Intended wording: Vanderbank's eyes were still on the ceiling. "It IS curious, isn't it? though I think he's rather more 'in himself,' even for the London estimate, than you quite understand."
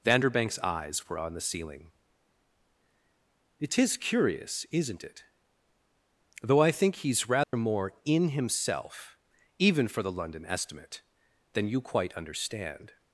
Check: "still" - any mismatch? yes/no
yes